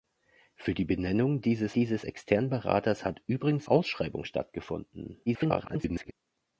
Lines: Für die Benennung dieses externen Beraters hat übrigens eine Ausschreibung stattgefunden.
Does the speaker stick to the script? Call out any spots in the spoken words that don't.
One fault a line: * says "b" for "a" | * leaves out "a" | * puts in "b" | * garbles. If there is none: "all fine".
* puts in "dieses"
* leaves out "eine"
* garbles